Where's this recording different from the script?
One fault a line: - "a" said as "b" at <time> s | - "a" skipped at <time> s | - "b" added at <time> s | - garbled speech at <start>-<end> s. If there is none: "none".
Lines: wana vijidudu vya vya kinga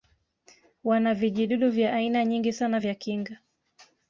- "aina nyingi sana" added at 1.9 s